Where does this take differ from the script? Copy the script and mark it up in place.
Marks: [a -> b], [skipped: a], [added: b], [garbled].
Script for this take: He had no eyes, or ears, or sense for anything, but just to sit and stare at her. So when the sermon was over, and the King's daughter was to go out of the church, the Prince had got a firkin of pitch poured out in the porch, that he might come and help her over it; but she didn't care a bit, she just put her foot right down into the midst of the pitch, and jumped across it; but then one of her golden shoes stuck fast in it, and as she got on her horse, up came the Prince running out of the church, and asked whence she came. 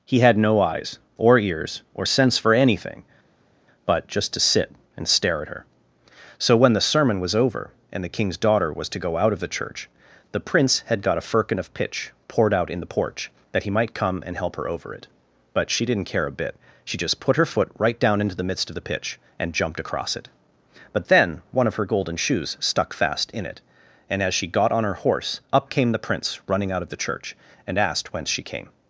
He had no eyes, or ears, or sense for anything, but just to sit and stare at her. So when the sermon was over, and the King's daughter was to go out of the church, the Prince had got a firkin of pitch poured out in the porch, that he might come and help her over it; but she didn't care a bit, she just put her foot right down into the midst of the pitch, and jumped across it; but then one of her golden shoes stuck fast in it, and as she got on her horse, up came the Prince running out of the church, and asked whence she came.